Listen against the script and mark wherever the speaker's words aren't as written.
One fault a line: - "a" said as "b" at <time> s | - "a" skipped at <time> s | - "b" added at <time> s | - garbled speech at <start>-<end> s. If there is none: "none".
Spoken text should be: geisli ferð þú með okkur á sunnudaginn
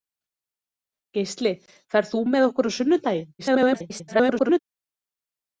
- garbled speech at 3.4-4.6 s